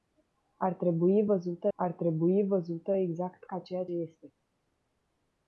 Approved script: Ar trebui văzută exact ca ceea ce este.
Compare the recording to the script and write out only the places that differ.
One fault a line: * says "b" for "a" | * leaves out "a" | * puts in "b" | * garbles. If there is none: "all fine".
* puts in "ar trebui văzută"
* leaves out "ce"